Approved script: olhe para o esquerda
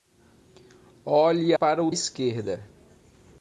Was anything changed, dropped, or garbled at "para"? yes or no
no